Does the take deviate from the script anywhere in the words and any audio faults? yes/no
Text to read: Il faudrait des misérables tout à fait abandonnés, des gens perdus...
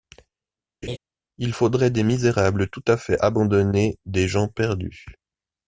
yes